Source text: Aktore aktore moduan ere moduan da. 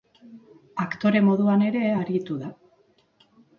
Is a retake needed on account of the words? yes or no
yes